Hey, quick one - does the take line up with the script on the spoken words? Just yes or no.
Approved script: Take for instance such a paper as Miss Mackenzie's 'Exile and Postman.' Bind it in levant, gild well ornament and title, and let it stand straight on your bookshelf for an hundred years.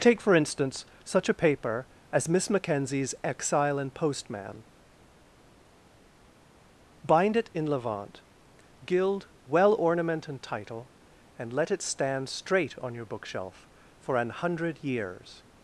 yes